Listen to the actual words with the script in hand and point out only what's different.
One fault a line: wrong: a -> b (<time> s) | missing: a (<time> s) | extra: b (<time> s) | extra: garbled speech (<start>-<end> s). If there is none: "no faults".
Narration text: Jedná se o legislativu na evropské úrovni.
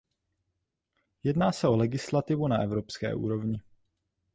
no faults